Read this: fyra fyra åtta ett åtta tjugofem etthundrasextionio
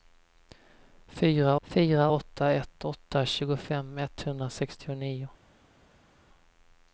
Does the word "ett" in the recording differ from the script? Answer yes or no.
no